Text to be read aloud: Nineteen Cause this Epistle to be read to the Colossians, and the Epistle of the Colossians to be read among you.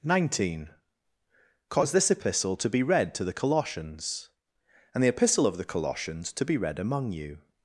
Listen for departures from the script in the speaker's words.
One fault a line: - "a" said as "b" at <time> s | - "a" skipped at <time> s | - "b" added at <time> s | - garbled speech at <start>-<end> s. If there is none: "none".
none